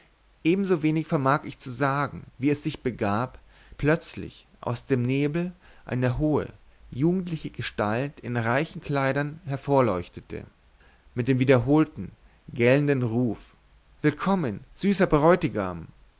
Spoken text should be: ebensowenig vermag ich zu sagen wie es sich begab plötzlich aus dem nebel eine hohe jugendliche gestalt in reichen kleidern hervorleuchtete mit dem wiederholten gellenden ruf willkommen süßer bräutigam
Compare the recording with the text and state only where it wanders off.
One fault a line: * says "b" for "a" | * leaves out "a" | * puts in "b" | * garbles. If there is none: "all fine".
all fine